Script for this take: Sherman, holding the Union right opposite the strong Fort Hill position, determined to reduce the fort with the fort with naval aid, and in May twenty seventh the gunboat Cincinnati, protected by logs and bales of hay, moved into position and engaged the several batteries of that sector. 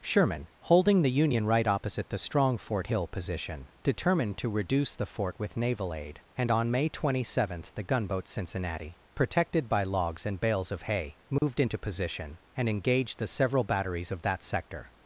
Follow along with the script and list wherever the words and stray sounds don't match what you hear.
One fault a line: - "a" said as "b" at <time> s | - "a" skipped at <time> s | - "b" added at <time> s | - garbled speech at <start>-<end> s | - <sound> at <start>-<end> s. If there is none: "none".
- "the fort with" skipped at 5.5 s
- "in" said as "on" at 6.5 s
- dropout at 11.4-11.4 s